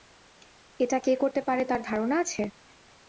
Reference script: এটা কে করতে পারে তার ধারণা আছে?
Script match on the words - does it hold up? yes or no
yes